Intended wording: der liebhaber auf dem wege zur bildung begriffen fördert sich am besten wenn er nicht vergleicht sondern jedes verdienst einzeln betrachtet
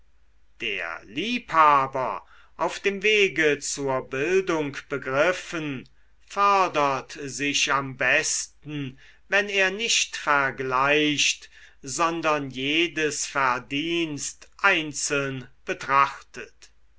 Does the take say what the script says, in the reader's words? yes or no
yes